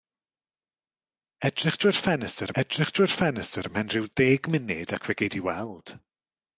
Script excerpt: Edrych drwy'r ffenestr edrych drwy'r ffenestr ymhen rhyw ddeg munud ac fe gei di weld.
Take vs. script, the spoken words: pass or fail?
pass